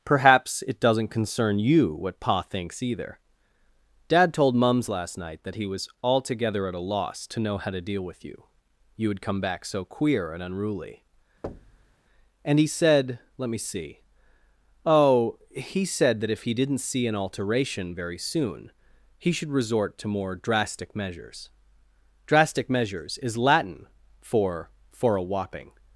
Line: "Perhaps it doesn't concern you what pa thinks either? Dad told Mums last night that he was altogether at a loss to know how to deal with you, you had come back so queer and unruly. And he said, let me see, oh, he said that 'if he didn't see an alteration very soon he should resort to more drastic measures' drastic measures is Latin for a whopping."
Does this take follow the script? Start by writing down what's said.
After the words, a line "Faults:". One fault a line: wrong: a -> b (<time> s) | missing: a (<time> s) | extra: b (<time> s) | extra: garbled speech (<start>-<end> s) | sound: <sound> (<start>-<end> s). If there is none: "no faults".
"Perhaps it doesn't concern you what pa thinks either? Dad told Mums last night that he was altogether at a loss to know how to deal with you, you had come back so queer and unruly. And he said, let me see, oh, he said that 'if he didn't see an alteration very soon he should resort to more drastic measures' drastic measures is Latin for for a whopping."
Faults:
sound: thud (11.4-11.9 s)
extra: for (24.9 s)